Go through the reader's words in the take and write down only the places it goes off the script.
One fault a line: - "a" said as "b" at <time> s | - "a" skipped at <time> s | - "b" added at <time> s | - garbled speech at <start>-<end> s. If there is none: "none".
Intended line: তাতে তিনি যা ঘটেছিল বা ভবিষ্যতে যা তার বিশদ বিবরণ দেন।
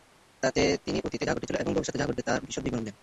- "অতীতে" added at 1.1 s
- "বা" said as "এবং" at 1.6 s
- "ঘটবে" added at 2.1 s